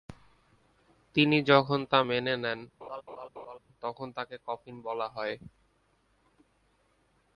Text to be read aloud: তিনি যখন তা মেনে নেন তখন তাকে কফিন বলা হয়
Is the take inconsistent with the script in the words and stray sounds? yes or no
yes